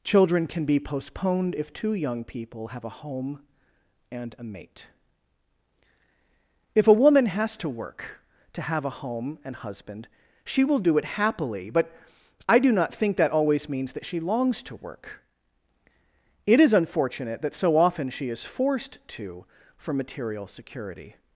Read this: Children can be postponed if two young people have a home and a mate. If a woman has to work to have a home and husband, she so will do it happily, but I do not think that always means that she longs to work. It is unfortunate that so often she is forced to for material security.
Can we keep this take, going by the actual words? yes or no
no